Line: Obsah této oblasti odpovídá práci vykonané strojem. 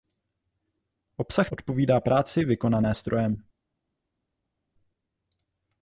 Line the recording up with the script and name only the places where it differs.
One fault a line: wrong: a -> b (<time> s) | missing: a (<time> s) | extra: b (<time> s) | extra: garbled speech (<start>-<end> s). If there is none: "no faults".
missing: této oblasti (1.5 s)